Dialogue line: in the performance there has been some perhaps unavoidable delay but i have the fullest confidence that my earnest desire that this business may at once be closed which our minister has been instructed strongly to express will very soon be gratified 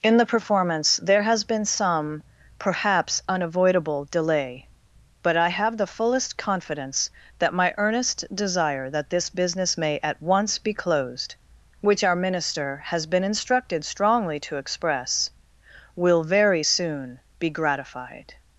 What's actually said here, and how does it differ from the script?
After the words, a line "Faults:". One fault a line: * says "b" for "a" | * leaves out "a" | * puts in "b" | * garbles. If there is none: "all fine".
in the performance there has been some perhaps unavoidable delay but i have the fullest confidence that my earnest desire that this business may at once be closed which our minister has been instructed strongly to express will very soon be gratified
Faults:
all fine